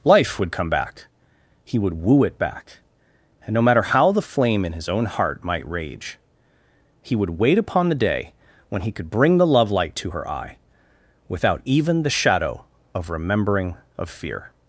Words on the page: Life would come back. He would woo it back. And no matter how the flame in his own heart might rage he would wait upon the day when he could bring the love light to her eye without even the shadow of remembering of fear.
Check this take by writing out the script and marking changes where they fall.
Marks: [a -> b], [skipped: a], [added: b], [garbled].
Life would come back. He would woo it back. And no matter how the flame in his own heart might rage he would wait upon the day when he could bring the love light to her eye without even the shadow of remembering of fear.